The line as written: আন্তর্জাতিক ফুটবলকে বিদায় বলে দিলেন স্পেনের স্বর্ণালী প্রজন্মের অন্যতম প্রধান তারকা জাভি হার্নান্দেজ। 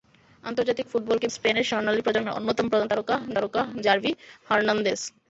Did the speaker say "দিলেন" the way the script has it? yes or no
no